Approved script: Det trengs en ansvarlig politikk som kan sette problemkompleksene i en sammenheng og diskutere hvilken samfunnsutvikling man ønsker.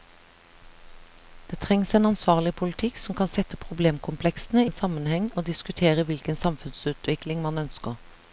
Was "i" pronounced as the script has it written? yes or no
no